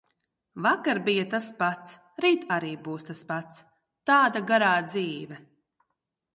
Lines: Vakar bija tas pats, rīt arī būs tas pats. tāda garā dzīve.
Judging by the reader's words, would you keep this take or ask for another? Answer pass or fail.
pass